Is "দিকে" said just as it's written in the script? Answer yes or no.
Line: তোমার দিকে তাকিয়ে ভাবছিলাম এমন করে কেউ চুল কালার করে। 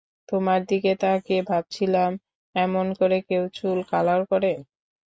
yes